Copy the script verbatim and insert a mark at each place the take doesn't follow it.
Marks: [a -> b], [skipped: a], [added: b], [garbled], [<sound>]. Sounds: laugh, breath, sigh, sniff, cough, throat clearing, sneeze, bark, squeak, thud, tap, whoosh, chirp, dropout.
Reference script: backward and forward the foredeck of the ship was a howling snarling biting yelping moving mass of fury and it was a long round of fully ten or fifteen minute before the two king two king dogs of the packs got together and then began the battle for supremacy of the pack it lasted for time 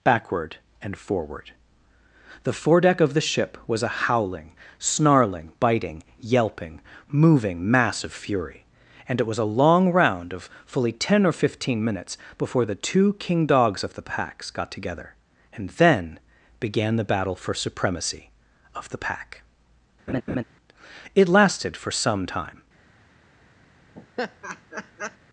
backward and forward the foredeck of the ship was a howling snarling biting yelping moving mass of fury and it was a long round of fully ten or fifteen [minute -> minutes] before the two king [skipped: two king] dogs of the packs got together and then began the battle for supremacy of the pack [laugh] it lasted for [added: some] time [laugh]